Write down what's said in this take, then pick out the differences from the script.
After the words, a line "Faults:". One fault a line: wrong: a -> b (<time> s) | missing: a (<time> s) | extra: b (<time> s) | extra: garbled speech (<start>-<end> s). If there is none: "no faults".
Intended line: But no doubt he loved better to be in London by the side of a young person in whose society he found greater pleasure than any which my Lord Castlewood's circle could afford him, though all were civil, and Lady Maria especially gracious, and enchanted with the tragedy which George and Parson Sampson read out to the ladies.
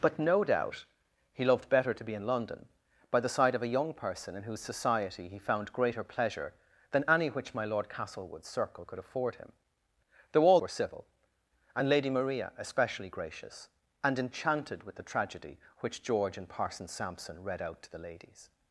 But no doubt he loved better to be in London by the side of a young person in whose society he found greater pleasure than any which my Lord Castlewood's circle could afford him, though all were civil, and Lady Maria especially gracious, and enchanted with the tragedy which George and Parson Sampson read out to the ladies.
Faults:
no faults